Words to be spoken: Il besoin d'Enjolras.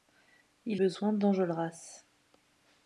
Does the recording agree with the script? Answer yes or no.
yes